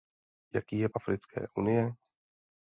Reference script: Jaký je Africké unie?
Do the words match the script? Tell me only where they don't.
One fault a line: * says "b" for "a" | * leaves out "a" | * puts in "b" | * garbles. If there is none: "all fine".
all fine